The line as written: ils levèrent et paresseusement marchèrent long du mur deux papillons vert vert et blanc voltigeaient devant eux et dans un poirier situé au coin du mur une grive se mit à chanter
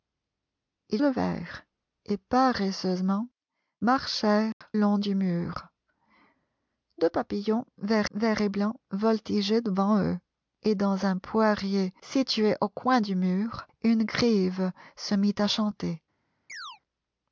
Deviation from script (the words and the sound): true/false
true